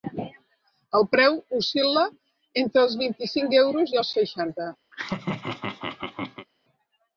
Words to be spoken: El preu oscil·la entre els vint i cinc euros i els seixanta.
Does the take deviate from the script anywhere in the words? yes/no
no